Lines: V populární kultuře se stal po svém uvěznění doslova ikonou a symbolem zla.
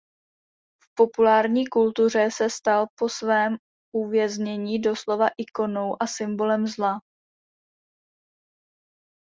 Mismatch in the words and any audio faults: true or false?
false